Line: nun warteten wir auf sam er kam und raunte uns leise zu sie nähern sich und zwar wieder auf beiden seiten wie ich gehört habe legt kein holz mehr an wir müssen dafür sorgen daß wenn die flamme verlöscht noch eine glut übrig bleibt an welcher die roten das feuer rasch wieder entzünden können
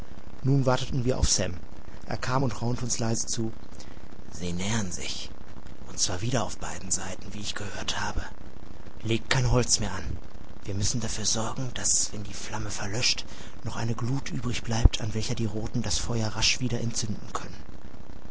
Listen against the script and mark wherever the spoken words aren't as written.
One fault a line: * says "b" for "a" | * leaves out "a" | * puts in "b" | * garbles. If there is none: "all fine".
all fine